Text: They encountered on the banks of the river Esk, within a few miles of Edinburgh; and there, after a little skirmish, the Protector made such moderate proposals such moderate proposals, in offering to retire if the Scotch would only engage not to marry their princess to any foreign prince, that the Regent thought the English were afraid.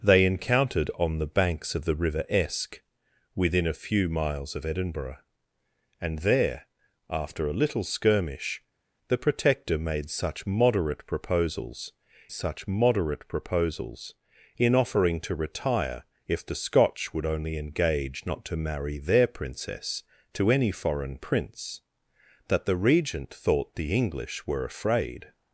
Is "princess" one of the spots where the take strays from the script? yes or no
no